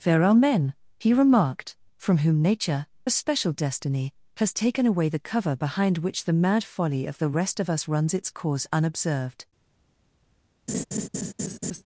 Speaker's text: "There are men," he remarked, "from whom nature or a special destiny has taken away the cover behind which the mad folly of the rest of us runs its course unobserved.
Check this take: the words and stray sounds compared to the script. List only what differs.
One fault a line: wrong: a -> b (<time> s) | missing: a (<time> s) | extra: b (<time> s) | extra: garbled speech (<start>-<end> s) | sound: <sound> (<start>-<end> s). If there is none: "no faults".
missing: or (2.9 s)
sound: laugh (10.7-11.8 s)